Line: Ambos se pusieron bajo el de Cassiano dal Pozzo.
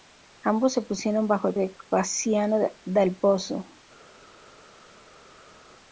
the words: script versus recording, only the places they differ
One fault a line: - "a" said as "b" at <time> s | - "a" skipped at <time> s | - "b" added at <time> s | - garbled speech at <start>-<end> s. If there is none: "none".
none